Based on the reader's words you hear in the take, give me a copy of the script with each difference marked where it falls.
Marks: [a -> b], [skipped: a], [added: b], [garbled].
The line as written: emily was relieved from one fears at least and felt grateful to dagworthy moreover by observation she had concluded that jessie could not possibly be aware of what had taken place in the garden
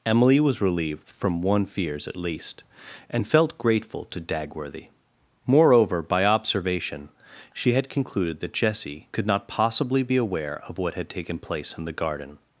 emily was relieved from one fears at least and felt grateful to dagworthy moreover by observation she had concluded that jessie could not possibly be aware of what had taken place in the garden